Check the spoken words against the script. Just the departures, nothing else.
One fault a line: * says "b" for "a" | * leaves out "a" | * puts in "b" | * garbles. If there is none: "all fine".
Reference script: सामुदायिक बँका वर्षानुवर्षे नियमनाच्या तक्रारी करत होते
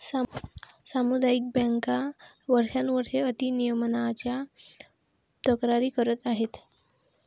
* puts in "अति"
* says "आहेत" for "होते"